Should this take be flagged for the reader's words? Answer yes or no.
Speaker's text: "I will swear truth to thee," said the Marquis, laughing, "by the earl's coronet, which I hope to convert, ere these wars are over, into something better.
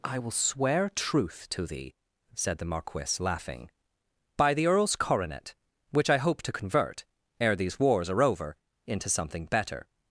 no